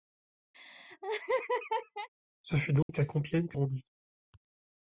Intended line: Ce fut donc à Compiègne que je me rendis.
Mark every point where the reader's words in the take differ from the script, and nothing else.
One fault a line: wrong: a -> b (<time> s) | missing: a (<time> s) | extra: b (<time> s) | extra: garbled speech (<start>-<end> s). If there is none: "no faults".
missing: je me (3.6 s)